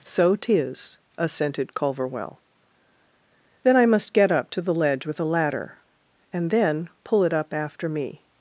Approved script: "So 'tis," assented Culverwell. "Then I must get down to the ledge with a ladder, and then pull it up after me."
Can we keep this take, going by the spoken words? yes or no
no